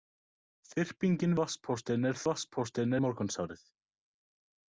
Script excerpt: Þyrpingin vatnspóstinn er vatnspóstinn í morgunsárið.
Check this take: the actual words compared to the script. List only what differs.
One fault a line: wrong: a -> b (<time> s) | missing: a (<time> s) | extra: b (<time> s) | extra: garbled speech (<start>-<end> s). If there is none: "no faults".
no faults